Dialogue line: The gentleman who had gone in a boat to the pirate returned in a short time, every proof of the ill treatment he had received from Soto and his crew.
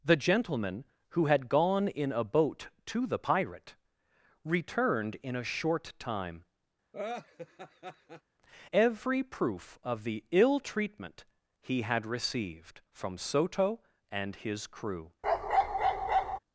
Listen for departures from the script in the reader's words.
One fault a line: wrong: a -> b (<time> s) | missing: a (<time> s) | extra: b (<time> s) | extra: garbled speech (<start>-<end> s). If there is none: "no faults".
no faults